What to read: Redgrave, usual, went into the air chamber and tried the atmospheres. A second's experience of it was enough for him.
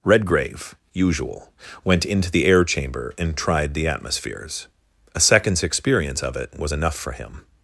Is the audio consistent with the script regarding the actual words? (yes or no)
yes